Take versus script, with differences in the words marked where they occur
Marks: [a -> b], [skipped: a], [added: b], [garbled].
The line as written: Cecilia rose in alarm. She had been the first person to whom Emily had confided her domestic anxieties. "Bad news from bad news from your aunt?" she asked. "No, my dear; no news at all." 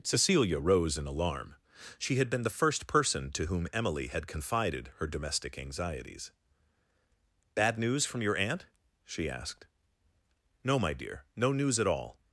Cecilia rose in alarm. She had been the first person to whom Emily had confided her domestic anxieties. "Bad news from [skipped: bad news from] your aunt?" she asked. "No, my dear; no news at all."